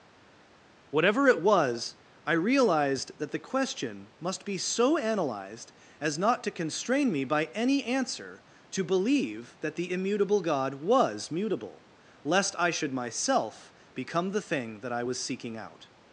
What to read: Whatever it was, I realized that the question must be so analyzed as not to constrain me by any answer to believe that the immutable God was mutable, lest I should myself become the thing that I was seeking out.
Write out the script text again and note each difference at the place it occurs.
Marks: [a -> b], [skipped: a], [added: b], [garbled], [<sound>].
Whatever it was, I realized that the question must be so analyzed as not to constrain me by any answer to believe that the immutable God was mutable, lest I should myself become the thing that I was seeking out.